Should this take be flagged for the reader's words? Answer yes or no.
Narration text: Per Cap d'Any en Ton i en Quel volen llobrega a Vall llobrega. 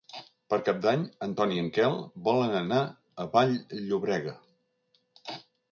yes